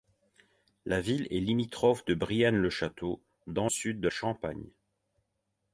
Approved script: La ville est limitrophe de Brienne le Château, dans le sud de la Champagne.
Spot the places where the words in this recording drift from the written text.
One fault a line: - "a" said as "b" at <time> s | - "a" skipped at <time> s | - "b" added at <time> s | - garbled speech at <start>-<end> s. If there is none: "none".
- "le" skipped at 3.7 s
- "la" skipped at 4.1 s